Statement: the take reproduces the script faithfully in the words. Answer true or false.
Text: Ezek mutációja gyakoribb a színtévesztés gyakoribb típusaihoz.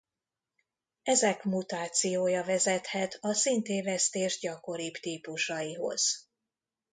false